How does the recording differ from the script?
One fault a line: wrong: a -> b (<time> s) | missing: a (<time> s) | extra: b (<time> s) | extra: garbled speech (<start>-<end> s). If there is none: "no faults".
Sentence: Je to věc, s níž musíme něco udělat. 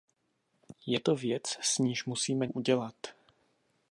missing: něco (2.5 s)